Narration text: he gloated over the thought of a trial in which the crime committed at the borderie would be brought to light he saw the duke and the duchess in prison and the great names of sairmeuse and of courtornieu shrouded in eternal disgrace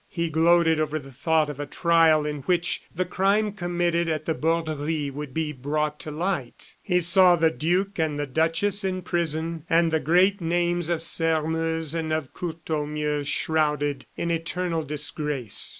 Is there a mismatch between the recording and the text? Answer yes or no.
no